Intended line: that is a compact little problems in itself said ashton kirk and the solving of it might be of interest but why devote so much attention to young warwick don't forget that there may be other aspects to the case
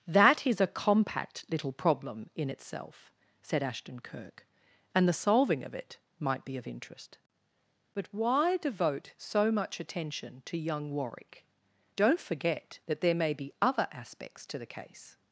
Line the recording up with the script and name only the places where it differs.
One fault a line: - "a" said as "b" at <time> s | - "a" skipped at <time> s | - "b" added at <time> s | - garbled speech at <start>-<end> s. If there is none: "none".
- "problems" said as "problem" at 1.7 s